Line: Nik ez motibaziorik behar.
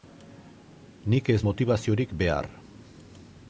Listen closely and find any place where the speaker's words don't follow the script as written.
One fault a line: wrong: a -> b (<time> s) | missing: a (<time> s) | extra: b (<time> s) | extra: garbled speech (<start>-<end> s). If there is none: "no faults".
no faults